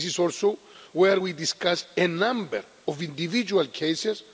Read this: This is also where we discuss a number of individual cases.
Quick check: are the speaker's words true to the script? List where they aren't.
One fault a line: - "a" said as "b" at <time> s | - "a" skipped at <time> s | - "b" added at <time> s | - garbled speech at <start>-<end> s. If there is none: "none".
none